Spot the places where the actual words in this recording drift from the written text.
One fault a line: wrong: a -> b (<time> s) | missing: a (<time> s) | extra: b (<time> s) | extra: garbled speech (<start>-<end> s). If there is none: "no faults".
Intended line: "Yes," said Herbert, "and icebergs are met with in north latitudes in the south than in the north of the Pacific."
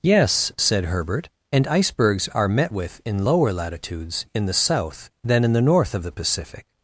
wrong: north -> lower (3.2 s)